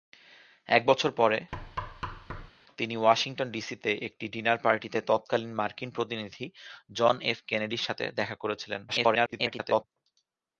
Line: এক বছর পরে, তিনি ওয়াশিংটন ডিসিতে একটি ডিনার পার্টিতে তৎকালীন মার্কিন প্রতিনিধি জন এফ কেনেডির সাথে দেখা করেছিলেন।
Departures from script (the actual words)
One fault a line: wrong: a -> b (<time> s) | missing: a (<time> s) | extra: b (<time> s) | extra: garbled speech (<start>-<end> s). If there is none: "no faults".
extra: garbled speech (8.9-9.8 s)